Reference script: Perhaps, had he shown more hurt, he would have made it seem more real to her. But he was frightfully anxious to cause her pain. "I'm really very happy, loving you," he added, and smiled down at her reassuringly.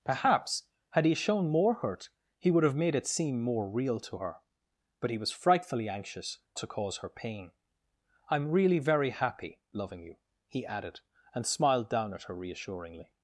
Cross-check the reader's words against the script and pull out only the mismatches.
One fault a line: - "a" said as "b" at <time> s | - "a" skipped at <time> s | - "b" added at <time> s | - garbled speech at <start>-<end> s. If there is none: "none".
none